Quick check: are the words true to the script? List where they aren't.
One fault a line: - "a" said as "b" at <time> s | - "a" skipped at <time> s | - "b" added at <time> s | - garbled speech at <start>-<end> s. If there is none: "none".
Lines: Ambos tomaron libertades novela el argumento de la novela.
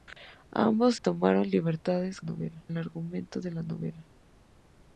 none